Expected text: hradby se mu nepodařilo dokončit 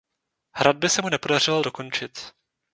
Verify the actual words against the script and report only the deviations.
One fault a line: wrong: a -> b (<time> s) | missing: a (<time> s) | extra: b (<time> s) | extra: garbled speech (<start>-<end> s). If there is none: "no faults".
no faults